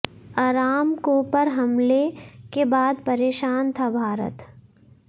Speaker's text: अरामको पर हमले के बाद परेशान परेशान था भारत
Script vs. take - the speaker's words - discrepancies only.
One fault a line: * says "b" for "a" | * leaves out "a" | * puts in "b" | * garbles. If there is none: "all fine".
* leaves out "परेशान"